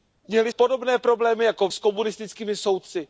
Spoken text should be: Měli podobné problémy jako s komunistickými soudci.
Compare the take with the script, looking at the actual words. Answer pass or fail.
pass